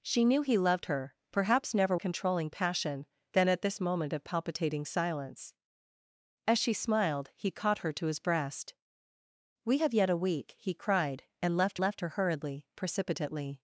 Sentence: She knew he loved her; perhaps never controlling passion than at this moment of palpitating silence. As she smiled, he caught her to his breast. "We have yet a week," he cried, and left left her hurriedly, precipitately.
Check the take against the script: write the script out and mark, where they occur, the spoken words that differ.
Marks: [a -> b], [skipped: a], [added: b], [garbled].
She knew he loved her; perhaps never controlling passion than at this moment of palpitating silence. As she smiled, he caught her to his breast. "We have yet a week," he cried, and left left her hurriedly, precipitately.